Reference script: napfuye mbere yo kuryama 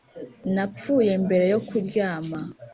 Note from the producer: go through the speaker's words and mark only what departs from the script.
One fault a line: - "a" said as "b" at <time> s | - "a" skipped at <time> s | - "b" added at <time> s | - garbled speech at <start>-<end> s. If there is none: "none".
none